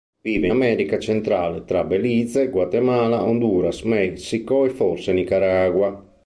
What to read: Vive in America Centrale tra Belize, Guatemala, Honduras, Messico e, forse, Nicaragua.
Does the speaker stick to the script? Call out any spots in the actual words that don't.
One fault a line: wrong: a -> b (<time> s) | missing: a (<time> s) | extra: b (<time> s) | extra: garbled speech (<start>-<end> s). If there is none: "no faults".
missing: in (0.5 s)